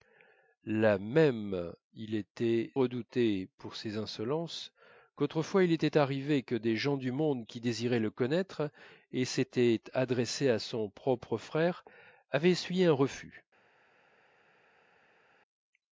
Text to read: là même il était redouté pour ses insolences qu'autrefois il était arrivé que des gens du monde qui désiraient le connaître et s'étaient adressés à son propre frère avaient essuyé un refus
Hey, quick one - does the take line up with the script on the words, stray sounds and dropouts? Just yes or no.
yes